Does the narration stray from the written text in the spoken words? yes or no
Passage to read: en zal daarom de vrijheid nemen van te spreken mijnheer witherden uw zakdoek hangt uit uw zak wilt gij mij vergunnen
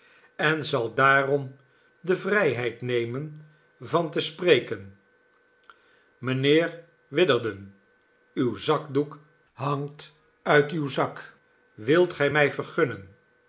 no